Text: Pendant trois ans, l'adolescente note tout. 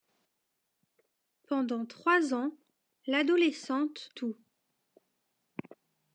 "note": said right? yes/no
no